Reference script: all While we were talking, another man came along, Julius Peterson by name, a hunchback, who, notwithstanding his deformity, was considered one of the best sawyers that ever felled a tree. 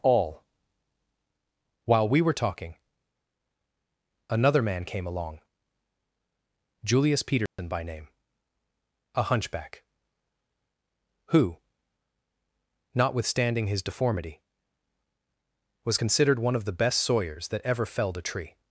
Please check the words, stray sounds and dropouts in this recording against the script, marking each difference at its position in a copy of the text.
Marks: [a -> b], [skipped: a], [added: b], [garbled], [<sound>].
all While we were talking, another man came along, Julius Peterson [dropout] by name, a hunchback, who, notwithstanding his deformity, was considered one of the best sawyers that ever felled a tree.